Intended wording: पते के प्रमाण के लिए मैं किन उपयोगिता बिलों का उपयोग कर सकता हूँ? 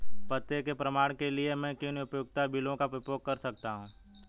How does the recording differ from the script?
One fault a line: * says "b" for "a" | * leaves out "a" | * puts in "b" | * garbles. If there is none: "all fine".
all fine